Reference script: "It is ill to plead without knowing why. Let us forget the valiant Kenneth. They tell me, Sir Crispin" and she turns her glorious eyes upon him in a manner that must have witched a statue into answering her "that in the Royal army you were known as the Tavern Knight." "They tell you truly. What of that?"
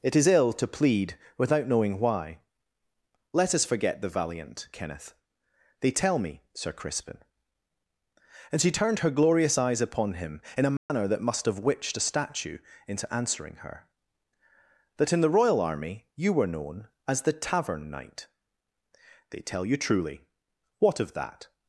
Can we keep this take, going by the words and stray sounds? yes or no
no